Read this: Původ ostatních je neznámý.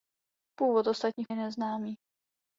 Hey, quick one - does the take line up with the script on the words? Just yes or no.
yes